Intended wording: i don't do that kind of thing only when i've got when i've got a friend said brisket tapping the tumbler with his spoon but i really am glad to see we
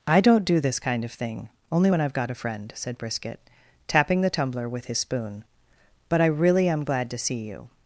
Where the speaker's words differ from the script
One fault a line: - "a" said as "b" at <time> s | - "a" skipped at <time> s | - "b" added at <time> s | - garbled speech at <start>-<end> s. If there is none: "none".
- "that" said as "this" at 0.6 s
- "when i've got" skipped at 2.3 s
- "we" said as "you" at 7.5 s